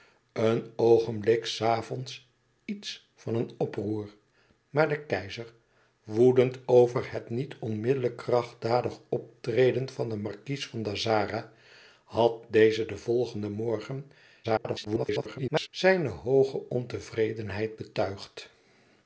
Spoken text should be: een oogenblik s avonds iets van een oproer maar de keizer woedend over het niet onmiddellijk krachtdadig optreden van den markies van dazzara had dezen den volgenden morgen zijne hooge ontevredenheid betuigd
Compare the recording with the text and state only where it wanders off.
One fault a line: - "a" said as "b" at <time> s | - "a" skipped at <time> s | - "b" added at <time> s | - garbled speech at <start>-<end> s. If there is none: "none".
- garbled speech at 14.4-15.7 s